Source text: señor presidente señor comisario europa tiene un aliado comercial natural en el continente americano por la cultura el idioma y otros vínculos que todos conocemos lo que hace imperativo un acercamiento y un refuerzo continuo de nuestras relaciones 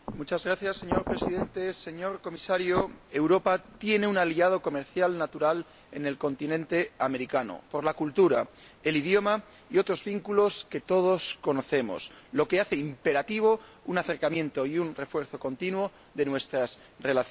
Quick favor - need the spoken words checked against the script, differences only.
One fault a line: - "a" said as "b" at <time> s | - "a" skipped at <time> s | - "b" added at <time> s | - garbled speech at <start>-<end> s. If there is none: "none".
none